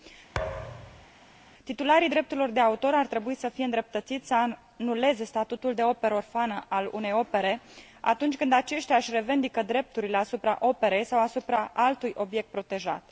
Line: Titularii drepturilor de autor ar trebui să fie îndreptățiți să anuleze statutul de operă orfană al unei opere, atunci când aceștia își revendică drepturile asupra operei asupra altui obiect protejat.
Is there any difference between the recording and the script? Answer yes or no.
yes